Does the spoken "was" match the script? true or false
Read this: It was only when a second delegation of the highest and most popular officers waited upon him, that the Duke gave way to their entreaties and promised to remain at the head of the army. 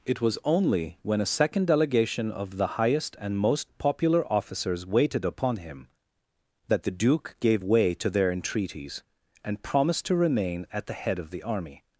true